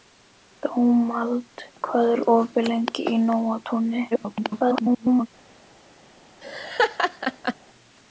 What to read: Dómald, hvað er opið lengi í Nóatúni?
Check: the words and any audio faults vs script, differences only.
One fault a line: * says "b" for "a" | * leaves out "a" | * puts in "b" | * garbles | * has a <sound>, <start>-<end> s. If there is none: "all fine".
* garbles
* has a laugh, 6.4-7.6 s